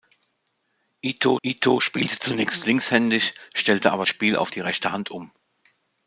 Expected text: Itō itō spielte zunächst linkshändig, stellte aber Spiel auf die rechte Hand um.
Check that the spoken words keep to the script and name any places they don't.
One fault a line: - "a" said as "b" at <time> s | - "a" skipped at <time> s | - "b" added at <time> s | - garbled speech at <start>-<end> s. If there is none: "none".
none